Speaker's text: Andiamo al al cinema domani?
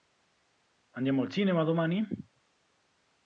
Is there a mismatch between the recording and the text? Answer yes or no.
yes